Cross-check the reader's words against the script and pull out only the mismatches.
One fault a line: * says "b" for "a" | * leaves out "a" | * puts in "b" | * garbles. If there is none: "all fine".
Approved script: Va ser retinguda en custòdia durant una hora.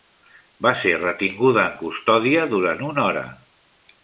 all fine